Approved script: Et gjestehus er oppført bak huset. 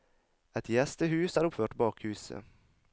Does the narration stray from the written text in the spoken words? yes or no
no